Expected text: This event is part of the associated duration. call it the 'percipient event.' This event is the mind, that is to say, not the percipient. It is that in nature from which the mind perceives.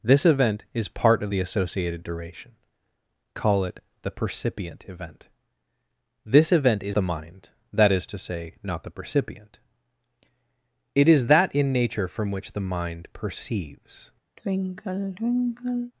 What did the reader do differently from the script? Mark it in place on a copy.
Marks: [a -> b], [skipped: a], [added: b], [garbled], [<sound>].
This event is part of the associated duration. call it the 'percipient event.' This event is the mind, that is to say, not the percipient. It is that in nature from which the mind perceives. [sigh]